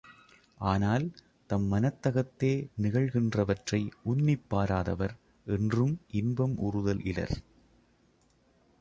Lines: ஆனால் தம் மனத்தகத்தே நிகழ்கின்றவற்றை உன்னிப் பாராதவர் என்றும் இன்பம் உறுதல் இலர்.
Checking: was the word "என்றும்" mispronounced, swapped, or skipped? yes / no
no